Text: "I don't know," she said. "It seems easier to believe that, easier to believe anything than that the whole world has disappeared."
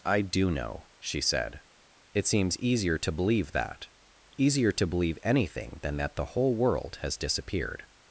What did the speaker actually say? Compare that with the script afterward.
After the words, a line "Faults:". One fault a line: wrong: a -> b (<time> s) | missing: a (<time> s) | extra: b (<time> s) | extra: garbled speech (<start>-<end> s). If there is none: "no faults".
"I do know," she said. "It seems easier to believe that, easier to believe anything than that the whole world has disappeared."
Faults:
wrong: don't -> do (0.2 s)